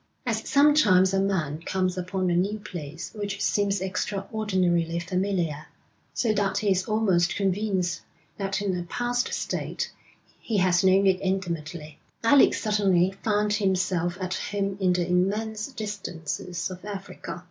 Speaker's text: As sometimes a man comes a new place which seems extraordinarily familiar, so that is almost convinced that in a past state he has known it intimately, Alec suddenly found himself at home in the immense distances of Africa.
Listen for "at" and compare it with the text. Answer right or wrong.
right